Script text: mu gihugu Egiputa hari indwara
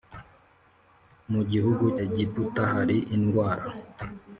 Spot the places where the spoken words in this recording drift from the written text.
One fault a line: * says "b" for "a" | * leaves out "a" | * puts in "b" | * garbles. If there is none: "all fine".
all fine